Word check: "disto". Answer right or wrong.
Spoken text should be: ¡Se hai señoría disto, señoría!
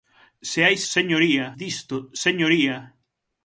right